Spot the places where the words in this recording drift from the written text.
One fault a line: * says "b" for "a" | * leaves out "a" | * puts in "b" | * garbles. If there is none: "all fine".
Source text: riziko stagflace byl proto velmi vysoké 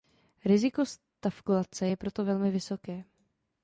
* says "je" for "byl"